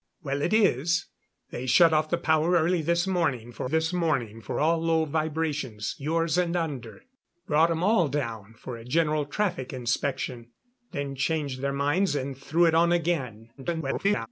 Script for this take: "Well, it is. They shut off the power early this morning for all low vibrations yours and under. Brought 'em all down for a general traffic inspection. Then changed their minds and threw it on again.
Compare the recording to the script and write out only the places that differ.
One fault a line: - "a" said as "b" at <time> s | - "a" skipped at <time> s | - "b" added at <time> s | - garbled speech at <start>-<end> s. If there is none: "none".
- "this morning for" added at 3.7 s
- garbled speech at 13.6-14.3 s